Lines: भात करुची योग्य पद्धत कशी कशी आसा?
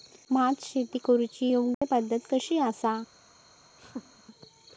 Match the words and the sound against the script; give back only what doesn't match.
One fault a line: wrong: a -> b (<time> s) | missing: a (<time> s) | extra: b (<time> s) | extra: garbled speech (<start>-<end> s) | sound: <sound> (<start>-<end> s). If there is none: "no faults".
extra: शेती (0.6 s)
sound: dropout (1.7-1.8 s)
missing: कशी (2.6 s)
sound: laugh (3.8-4.2 s)